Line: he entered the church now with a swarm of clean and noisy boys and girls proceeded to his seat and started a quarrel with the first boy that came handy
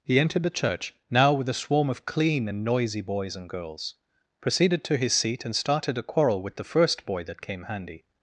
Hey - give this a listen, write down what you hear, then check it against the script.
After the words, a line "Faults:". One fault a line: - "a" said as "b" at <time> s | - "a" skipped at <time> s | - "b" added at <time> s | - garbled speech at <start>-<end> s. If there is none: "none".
he entered the church now with a swarm of clean and noisy boys and girls proceeded to his seat and started a quarrel with the first boy that came handy
Faults:
none